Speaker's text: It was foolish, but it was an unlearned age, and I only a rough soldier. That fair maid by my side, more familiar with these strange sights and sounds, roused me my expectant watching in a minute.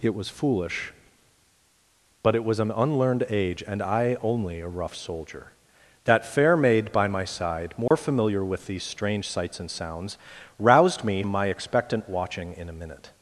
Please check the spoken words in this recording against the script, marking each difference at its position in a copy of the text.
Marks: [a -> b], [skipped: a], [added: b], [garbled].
It was foolish, but it was an unlearned age, and I only a rough soldier. That fair maid by my side, more familiar with these strange sights and sounds, roused me my expectant watching in a minute.